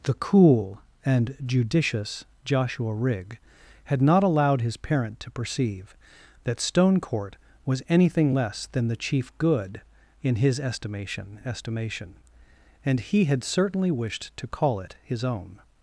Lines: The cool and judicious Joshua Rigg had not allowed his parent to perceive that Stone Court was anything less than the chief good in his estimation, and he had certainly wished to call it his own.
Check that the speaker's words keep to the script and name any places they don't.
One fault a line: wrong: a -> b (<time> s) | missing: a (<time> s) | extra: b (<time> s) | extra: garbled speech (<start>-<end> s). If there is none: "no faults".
extra: estimation (11.4 s)